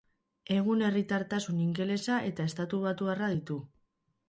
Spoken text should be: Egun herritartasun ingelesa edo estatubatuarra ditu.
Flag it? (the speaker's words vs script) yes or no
yes